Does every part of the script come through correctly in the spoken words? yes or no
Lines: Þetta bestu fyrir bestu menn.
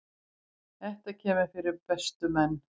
no